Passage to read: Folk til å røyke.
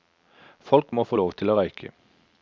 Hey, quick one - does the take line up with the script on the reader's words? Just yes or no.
no